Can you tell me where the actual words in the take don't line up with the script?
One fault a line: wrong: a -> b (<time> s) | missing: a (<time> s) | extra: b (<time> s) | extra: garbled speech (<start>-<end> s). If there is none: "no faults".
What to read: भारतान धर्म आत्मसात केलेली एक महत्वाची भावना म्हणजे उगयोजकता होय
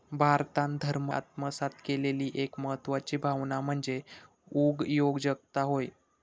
no faults